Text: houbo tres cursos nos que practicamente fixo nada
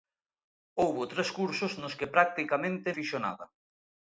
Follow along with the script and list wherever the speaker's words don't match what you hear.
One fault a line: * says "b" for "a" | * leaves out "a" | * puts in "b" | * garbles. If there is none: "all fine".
all fine